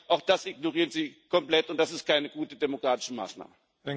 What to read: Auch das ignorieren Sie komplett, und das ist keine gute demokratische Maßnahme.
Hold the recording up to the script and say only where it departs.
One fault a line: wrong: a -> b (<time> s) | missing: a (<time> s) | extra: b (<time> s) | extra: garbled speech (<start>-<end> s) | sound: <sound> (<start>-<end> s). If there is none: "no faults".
no faults